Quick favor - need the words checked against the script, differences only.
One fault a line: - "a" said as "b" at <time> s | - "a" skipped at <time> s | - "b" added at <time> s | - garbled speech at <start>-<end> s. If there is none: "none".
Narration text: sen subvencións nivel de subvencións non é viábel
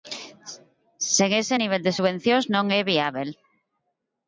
- "subvencións" said as "ese" at 1.4 s